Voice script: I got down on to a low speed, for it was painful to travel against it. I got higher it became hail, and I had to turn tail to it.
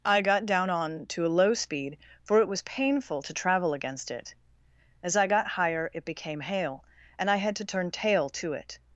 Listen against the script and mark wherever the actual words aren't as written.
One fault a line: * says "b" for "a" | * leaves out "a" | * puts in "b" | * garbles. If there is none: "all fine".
* puts in "As"